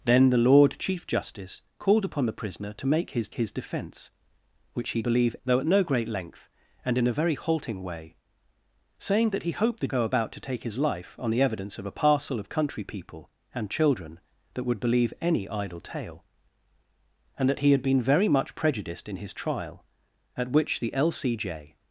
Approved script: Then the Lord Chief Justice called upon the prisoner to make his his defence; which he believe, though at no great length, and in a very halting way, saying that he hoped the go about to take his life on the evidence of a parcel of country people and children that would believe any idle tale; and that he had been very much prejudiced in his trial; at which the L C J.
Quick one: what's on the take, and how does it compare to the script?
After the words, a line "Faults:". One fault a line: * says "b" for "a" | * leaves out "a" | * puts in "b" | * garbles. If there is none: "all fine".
Then the Lord Chief Justice called upon the prisoner to make his his defence; which he believe, though at no great length, and in a very halting way, saying that he hoped the go about to take his life on the evidence of a parcel of country people and children that would believe any idle tale; and that he had been very much prejudiced in his trial; at which the L C J.
Faults:
all fine